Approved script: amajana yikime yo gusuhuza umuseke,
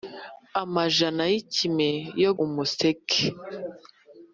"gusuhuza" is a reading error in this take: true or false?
true